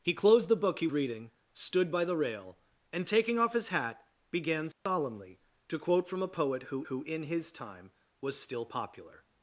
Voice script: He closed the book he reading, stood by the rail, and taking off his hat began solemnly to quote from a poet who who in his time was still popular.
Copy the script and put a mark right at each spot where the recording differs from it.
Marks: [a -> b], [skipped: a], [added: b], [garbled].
He closed the book he reading, stood by the rail, and taking off his hat began solemnly to quote from a poet who who in his time was still popular.